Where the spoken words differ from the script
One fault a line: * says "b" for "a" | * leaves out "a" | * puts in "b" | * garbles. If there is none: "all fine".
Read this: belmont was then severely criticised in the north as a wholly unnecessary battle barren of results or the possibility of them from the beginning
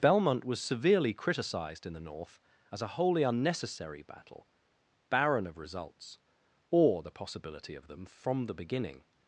* leaves out "then"